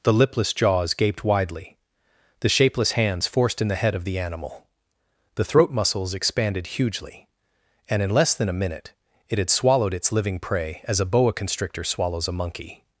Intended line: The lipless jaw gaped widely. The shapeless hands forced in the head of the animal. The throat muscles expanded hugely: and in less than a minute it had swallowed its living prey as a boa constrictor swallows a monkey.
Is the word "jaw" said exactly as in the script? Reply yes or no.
no